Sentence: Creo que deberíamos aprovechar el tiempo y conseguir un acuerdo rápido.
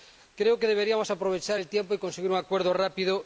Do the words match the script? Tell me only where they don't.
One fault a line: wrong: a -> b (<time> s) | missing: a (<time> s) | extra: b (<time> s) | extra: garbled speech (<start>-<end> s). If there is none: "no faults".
no faults